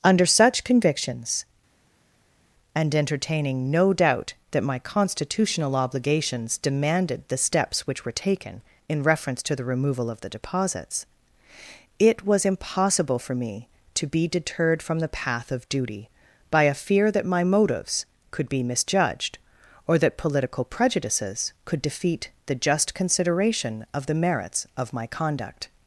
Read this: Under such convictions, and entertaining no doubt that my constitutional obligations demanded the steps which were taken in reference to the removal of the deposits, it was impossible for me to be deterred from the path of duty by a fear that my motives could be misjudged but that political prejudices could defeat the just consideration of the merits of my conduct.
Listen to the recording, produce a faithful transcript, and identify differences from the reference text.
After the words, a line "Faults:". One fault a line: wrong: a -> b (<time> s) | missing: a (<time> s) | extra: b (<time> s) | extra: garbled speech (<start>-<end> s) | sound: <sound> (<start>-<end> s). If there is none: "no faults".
Under such convictions, and entertaining no doubt that my constitutional obligations demanded the steps which were taken in reference to the removal of the deposits, it was impossible for me to be deterred from the path of duty by a fear that my motives could be misjudged or that political prejudices could defeat the just consideration of the merits of my conduct.
Faults:
wrong: but -> or (19.9 s)